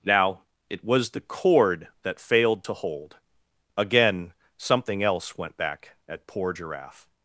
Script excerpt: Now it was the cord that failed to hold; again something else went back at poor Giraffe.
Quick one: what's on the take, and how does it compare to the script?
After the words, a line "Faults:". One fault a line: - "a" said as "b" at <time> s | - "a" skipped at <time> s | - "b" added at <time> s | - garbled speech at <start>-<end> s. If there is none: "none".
Now it was the cord that failed to hold; again something else went back at poor Giraffe.
Faults:
none